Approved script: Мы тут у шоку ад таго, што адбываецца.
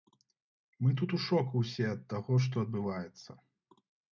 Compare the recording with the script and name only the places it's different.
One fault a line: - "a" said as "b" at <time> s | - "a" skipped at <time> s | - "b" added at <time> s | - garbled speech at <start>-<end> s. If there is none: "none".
- "ўсе" added at 1.6 s